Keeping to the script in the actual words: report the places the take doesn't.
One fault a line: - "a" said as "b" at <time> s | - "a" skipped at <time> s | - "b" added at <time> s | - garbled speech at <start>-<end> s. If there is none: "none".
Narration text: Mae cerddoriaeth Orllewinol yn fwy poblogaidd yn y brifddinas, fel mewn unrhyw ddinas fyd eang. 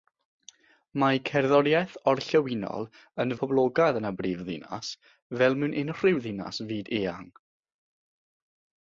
- "fwy" skipped at 3.4 s